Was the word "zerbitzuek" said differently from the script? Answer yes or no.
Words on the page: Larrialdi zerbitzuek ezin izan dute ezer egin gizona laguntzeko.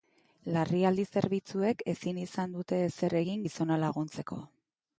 no